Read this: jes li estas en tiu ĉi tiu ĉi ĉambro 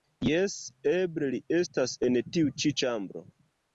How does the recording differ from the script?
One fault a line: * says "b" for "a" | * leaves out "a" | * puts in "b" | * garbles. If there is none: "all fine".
* puts in "eble"
* leaves out "tiu ĉi"